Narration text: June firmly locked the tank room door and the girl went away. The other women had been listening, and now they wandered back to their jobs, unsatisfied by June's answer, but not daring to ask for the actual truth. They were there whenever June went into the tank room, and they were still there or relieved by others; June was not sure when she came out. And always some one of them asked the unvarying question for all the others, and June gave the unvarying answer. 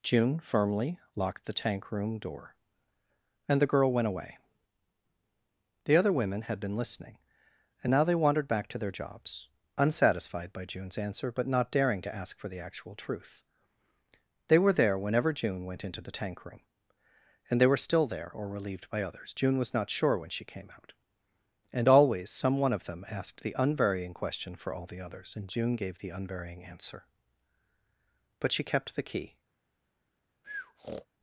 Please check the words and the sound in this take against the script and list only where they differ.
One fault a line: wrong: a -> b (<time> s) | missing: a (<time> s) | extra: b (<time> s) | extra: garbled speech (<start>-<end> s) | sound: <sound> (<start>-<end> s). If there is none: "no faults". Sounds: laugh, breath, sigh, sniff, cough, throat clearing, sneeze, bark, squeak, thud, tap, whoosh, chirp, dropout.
extra: But she kept the key (28.4 s)
sound: breath (30.4-31.1 s)